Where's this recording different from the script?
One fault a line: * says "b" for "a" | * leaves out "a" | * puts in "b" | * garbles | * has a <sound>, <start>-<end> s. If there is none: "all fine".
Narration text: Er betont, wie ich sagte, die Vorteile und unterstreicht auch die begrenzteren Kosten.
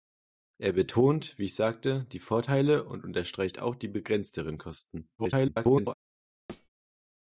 * garbles
* has a thud, 6.5-6.7 s